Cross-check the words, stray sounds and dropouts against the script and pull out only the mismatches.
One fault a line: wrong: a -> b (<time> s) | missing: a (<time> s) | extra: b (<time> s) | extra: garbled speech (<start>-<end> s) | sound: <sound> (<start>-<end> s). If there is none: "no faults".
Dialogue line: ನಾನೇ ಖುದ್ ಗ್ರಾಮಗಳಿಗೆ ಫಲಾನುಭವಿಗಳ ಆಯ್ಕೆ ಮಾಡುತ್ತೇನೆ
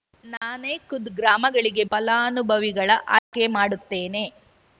sound: dropout (0.4-0.4 s)
sound: dropout (3.2-3.3 s)